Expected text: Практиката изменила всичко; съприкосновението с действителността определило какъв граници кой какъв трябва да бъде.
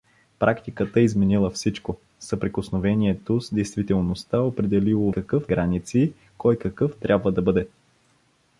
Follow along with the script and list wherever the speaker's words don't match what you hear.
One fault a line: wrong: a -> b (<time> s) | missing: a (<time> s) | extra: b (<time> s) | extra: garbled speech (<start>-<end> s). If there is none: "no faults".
no faults